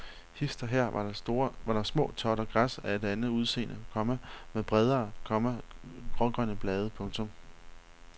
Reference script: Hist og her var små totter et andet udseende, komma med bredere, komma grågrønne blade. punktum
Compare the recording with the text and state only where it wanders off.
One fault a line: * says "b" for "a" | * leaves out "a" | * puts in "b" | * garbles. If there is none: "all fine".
* puts in "der"
* puts in "græs af"